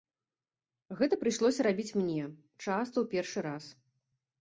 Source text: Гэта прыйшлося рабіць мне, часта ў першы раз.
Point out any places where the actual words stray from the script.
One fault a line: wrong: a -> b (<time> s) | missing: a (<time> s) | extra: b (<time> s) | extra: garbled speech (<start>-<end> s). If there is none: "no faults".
no faults